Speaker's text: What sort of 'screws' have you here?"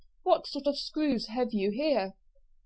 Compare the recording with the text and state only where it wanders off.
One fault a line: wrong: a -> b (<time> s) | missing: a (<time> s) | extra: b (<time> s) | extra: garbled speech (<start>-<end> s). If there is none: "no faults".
no faults